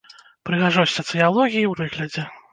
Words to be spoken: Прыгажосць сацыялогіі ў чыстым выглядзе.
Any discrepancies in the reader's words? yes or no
yes